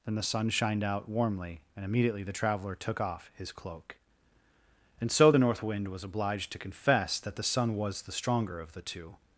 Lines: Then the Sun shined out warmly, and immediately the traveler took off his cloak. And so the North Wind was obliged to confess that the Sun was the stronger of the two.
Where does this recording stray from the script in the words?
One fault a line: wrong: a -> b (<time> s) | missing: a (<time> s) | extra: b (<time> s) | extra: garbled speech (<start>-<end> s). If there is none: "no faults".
no faults